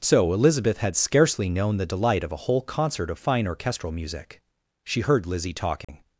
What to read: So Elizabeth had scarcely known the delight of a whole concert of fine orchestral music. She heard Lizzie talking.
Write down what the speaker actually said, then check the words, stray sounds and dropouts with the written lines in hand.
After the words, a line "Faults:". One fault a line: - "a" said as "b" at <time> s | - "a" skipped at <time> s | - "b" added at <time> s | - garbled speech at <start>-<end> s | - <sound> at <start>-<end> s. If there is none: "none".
So Elizabeth had scarcely known the delight of a whole concert of fine orchestral music. She heard Lizzie talking.
Faults:
- dropout at 5.8-5.9 s